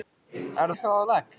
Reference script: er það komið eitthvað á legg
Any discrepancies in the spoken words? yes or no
yes